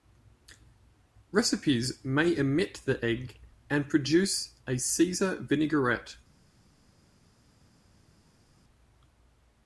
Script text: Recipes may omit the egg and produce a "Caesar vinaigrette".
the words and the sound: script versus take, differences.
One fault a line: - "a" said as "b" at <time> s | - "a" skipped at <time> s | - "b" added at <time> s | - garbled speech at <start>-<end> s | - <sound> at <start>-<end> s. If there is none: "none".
none